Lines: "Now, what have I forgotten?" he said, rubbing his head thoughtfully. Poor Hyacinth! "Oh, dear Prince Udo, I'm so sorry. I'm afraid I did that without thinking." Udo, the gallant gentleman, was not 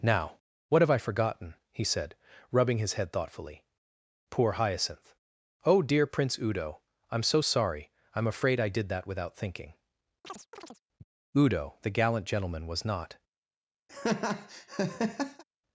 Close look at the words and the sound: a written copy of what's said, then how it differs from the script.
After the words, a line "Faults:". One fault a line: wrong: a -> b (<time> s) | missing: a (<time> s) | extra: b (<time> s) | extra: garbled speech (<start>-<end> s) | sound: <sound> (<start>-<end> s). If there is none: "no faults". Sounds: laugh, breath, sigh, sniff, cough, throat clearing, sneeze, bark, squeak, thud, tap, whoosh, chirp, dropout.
"Now, what have I forgotten?" he said, rubbing his head thoughtfully. Poor Hyacinth! "Oh, dear Prince Udo, I'm so sorry. I'm afraid I did that without thinking." Udo, the gallant gentleman, was not
Faults:
sound: chirp (10.2-10.8 s)
sound: laugh (13.9-15.4 s)